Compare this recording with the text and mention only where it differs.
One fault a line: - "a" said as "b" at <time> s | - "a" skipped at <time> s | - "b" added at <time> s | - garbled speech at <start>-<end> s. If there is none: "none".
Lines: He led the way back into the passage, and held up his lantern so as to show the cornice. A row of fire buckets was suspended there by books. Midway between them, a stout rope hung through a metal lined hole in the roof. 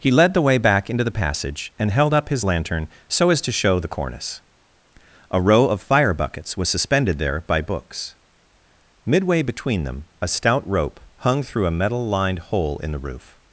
none